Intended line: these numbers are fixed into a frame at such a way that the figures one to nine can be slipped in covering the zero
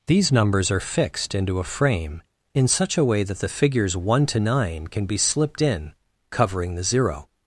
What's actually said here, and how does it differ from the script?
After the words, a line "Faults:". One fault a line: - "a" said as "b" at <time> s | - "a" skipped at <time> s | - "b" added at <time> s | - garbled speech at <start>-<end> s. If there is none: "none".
these numbers are fixed into a frame in such a way that the figures one to nine can be slipped in covering the zero
Faults:
- "at" said as "in" at 2.5 s